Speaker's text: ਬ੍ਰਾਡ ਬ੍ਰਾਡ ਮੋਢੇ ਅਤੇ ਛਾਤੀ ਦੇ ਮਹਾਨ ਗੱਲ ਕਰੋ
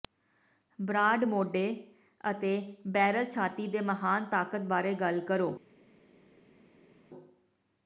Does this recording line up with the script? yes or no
no